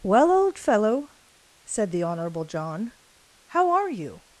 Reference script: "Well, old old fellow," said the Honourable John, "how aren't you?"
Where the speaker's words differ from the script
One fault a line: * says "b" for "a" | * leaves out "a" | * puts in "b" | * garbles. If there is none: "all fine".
* leaves out "old"
* says "are" for "aren't"